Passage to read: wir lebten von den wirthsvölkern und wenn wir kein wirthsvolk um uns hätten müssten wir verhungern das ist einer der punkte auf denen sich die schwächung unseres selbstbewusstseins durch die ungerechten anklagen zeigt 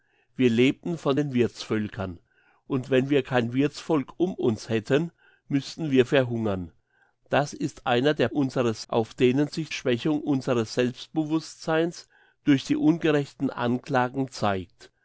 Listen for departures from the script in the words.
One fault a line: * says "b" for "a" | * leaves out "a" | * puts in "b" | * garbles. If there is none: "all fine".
* says "unseres" for "punkte"
* leaves out "die"